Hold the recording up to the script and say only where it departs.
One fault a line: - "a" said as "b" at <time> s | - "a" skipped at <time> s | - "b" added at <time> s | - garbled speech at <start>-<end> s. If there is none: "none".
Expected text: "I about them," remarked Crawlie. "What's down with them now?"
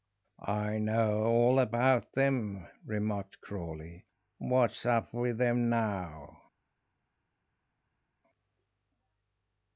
- "know all" added at 0.8 s
- "down" said as "up" at 4.8 s